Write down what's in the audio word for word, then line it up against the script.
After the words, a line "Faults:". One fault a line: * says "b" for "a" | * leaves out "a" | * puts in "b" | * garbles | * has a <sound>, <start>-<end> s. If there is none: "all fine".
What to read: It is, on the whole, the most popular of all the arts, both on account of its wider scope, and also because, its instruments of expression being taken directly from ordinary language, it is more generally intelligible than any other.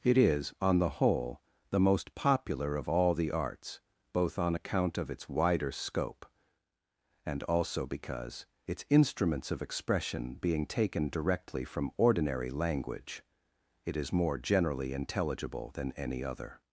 It is, on the whole, the most popular of all the arts, both on account of its wider scope, and also because, its instruments of expression being taken directly from ordinary language, it is more generally intelligible than any other.
Faults:
all fine